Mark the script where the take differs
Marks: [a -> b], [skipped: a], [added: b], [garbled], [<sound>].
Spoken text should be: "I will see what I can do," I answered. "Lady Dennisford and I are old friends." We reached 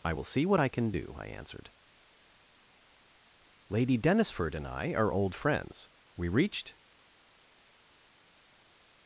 "I will see what I can do," I answered. "Lady Dennisford and I are old friends." We reached